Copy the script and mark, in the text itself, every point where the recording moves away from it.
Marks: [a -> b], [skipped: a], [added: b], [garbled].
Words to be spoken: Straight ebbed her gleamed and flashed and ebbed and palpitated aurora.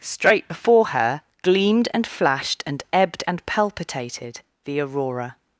Straight [ebbed -> before] her gleamed and flashed and ebbed and palpitated [added: the] aurora.